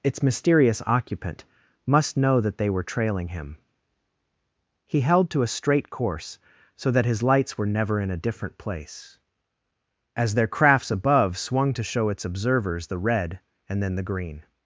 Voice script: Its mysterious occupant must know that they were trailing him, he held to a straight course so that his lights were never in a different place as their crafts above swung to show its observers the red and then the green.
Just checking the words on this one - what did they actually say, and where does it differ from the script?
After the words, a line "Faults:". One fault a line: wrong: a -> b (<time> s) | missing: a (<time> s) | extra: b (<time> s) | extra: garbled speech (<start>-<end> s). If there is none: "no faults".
Its mysterious occupant must know that they were trailing him, he held to a straight course so that his lights were never in a different place as their crafts above swung to show its observers the red and then the green.
Faults:
no faults